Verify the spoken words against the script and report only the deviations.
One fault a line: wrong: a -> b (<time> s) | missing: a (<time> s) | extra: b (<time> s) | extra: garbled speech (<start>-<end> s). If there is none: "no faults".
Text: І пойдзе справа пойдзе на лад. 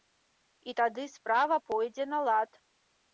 wrong: пойдзе -> тады (0.8 s)